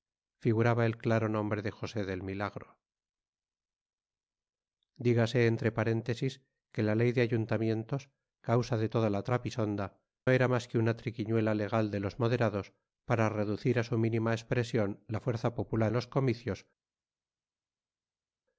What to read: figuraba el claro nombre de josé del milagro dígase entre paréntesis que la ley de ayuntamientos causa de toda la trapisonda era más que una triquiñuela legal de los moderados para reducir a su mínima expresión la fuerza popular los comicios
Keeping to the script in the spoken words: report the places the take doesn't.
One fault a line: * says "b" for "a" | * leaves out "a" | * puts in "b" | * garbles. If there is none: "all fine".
all fine